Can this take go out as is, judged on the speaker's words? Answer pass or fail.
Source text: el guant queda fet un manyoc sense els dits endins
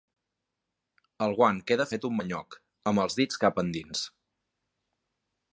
fail